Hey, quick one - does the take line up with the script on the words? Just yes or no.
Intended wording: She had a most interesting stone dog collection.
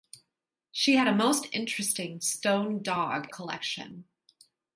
yes